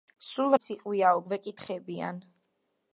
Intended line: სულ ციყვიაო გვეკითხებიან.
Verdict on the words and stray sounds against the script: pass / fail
pass